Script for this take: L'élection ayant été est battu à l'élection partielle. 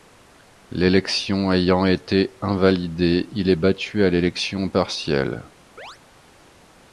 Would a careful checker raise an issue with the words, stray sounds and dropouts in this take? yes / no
yes